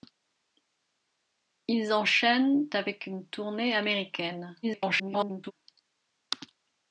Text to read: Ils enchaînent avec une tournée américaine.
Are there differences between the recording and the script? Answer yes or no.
yes